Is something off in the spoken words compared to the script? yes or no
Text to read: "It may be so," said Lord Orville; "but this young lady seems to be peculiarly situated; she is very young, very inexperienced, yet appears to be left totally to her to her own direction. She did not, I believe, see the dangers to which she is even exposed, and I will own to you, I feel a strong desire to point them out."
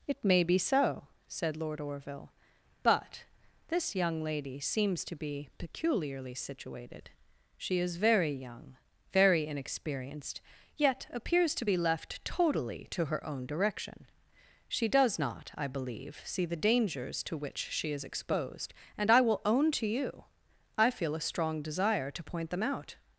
yes